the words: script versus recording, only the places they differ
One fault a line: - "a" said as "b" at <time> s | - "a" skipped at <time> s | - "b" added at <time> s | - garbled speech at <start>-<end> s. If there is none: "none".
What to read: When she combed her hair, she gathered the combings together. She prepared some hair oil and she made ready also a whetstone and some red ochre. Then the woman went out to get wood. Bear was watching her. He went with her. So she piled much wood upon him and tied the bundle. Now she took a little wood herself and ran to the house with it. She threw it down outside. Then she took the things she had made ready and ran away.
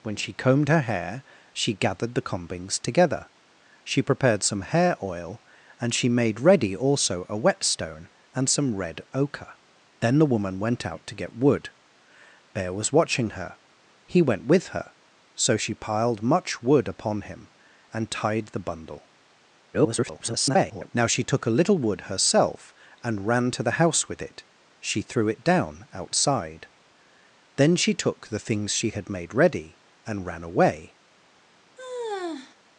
- garbled speech at 19.7-20.9 s